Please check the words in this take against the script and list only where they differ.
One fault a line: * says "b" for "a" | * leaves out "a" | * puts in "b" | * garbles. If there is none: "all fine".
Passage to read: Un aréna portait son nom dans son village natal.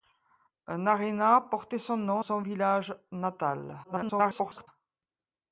* leaves out "dans"
* garbles